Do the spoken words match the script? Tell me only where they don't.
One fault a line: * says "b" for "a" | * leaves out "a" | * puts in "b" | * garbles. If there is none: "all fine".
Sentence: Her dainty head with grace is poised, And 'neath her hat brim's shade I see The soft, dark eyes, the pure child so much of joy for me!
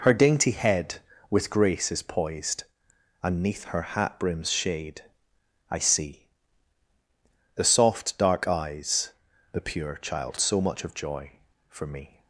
all fine